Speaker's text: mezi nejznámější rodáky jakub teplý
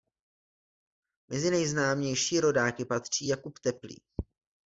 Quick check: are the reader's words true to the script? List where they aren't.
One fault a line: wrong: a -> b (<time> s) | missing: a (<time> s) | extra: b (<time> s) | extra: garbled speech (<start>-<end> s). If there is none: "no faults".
extra: patří (2.8 s)